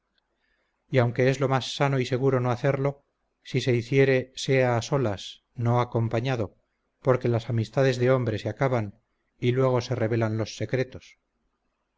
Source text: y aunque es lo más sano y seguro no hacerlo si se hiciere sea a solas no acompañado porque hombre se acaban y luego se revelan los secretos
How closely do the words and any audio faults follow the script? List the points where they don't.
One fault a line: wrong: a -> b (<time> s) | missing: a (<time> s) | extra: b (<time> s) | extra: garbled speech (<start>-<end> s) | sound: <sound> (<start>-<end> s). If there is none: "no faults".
extra: las amistades de (7.3 s)